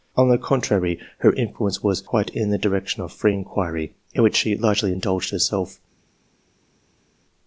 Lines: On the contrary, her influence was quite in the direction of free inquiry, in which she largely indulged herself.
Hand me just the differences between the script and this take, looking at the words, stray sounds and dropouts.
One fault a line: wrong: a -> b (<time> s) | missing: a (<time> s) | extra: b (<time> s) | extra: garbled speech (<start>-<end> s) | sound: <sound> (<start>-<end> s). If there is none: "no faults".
no faults